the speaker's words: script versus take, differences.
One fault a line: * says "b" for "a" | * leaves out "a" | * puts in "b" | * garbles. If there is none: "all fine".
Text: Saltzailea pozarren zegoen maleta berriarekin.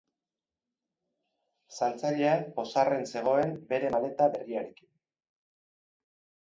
* puts in "bere"